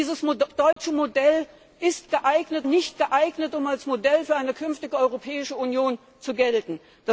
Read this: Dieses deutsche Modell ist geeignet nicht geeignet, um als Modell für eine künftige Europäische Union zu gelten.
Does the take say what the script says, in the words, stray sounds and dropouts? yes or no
no